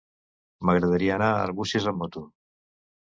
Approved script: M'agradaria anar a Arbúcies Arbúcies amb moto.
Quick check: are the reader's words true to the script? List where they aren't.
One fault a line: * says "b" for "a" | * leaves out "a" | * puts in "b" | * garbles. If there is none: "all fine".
* leaves out "Arbúcies"